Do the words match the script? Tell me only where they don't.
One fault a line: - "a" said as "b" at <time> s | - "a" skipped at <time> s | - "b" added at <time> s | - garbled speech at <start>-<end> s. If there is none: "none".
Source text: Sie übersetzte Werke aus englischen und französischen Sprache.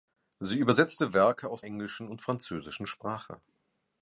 none